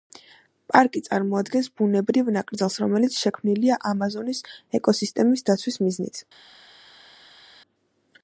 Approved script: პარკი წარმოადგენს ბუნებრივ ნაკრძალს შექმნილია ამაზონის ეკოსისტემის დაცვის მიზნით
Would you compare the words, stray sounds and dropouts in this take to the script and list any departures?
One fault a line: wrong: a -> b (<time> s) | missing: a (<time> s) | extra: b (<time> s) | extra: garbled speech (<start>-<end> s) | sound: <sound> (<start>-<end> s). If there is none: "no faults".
extra: რომელიც (2.8 s)